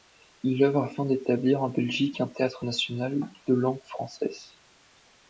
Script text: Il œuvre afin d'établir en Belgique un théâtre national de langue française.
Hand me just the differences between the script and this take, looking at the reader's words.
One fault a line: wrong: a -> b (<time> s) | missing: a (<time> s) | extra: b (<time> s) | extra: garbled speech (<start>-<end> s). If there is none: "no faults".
no faults